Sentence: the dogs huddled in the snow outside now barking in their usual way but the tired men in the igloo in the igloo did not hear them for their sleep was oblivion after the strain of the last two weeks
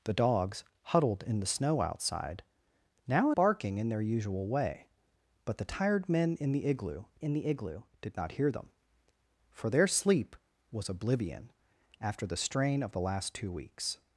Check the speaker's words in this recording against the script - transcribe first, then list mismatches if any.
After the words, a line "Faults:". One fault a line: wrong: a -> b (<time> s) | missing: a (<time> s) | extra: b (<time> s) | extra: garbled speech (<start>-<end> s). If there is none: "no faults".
the dogs huddled in the snow outside now barking in their usual way but the tired men in the igloo in the igloo did not hear them for their sleep was oblivion after the strain of the last two weeks
Faults:
no faults